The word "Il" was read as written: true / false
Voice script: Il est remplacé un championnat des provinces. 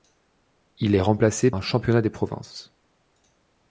true